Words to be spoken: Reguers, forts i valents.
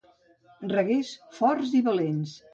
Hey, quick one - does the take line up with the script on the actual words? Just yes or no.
yes